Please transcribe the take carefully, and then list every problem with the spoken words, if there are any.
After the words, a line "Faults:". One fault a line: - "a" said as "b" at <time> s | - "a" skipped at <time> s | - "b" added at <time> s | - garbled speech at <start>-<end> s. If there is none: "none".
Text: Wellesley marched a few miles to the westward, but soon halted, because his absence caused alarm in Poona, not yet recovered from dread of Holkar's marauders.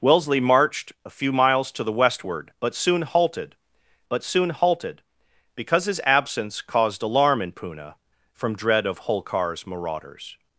Wellesley marched a few miles to the westward, but soon halted but soon halted, because his absence caused alarm in Poona, from dread of Holkar's marauders.
Faults:
- "but soon halted" added at 4.1 s
- "not yet recovered" skipped at 7.9 s